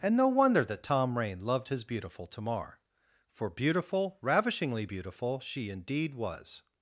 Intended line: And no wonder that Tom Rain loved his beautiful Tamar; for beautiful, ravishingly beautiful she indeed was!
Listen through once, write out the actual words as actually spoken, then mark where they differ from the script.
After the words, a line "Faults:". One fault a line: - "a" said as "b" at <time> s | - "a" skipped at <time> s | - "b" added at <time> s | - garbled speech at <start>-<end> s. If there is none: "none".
And no wonder that Tom Rain loved his beautiful Tamar; for beautiful, ravishingly beautiful she indeed was!
Faults:
none